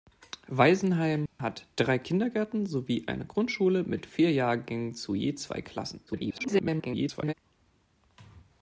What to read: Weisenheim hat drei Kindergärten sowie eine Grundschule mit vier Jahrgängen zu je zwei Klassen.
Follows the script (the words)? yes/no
no